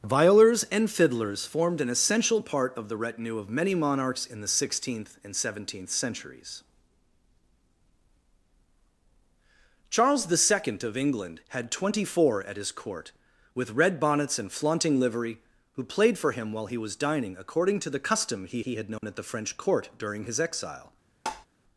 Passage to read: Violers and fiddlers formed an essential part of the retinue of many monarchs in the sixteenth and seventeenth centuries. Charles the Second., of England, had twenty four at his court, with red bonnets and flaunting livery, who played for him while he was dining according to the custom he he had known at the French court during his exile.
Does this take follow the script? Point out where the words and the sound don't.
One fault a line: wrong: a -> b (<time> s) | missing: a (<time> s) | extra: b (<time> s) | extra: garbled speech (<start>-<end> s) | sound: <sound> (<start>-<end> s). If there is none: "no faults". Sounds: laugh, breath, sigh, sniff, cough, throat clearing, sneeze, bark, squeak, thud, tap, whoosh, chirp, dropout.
sound: dropout (19.0-19.0 s)
sound: tap (21.3-21.5 s)